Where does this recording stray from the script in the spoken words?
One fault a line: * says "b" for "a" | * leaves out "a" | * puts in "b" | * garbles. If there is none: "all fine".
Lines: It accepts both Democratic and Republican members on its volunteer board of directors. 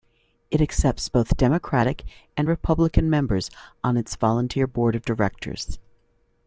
all fine